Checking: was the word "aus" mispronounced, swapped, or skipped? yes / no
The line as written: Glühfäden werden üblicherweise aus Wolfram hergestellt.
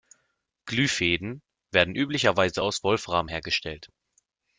no